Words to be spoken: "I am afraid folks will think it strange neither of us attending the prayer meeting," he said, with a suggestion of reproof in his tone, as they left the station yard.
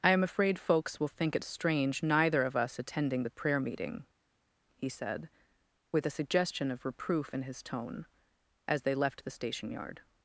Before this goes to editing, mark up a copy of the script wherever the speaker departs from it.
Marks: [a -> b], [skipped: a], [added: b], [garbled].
"I am afraid folks will think it strange neither of us attending the prayer meeting," he said, with a suggestion of reproof in his tone, as they left the station yard.